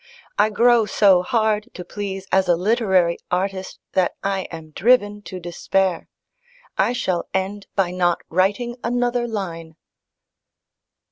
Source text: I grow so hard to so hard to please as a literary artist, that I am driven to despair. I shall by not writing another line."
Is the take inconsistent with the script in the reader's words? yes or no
yes